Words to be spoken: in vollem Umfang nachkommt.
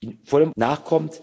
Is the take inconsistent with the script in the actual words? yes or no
yes